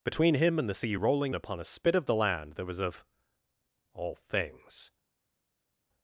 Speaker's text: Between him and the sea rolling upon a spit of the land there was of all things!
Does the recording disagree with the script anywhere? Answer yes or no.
no